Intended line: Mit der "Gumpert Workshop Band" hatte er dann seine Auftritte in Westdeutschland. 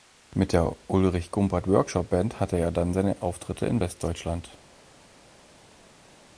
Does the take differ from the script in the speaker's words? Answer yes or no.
yes